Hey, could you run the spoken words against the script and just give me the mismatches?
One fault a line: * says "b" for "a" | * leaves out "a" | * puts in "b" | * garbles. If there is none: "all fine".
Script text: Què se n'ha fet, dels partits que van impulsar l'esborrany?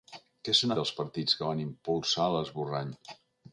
* leaves out "fet"